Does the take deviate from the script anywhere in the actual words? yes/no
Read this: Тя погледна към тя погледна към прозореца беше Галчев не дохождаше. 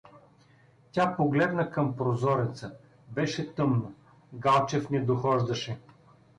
yes